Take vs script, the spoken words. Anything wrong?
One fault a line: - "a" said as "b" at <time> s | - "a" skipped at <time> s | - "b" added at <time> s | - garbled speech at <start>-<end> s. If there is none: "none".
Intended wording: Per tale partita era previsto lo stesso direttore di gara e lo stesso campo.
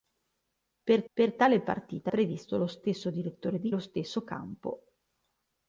- "per" added at 1.1 s
- "era" skipped at 2.1 s
- "gara e" skipped at 3.7 s